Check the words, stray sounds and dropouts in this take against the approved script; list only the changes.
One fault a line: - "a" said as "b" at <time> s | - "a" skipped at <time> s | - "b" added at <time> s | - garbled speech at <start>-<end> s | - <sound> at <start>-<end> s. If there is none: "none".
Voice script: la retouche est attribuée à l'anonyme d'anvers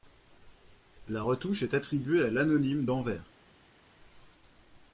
none